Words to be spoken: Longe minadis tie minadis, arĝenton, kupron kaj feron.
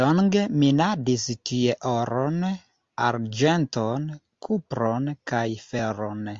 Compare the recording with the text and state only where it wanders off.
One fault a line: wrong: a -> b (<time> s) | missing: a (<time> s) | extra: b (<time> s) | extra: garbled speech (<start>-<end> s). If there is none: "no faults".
wrong: minadis -> oron (1.9 s)